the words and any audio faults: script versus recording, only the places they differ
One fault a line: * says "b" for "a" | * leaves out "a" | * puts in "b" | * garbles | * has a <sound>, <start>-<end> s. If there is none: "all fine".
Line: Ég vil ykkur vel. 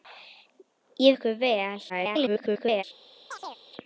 * leaves out "vil"
* garbles
* has a chirp, 3.3-3.7 s